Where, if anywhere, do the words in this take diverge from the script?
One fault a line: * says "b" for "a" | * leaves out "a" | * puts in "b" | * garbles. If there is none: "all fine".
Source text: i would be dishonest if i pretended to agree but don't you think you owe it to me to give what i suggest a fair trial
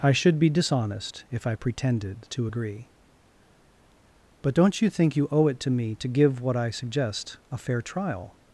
* says "should" for "would"